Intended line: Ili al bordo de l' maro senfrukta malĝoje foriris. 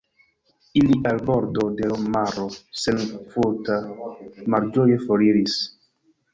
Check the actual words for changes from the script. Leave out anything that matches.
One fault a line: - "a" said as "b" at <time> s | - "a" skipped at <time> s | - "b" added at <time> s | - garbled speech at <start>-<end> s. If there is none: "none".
none